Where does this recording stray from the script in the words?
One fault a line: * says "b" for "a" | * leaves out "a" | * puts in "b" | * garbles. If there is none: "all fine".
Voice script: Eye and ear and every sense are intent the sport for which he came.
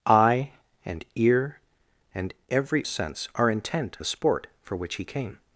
all fine